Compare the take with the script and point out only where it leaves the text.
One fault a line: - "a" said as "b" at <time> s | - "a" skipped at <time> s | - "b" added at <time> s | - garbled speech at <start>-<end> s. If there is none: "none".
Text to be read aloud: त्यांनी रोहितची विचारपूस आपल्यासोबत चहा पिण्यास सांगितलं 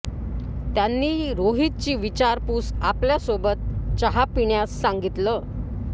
none